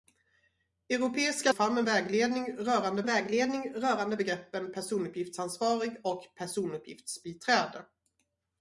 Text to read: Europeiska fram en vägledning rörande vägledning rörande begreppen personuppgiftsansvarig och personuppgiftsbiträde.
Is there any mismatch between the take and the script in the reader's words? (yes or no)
no